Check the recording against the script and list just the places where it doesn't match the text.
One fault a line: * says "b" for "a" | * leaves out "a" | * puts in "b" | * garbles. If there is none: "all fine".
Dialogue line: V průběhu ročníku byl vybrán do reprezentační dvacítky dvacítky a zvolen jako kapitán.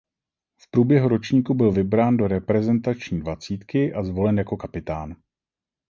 * leaves out "dvacítky"